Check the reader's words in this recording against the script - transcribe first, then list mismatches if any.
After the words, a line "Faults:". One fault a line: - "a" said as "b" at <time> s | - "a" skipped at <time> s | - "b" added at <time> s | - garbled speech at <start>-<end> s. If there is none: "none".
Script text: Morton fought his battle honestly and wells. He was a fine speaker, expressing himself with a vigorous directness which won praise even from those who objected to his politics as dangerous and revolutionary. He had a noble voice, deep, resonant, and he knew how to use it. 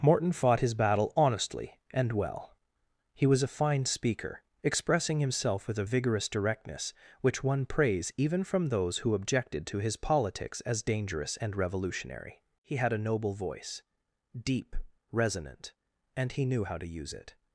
Morton fought his battle honestly and well. He was a fine speaker, expressing himself with a vigorous directness which won praise even from those who objected to his politics as dangerous and revolutionary. He had a noble voice, deep, resonant, and he knew how to use it.
Faults:
- "wells" said as "well" at 2.1 s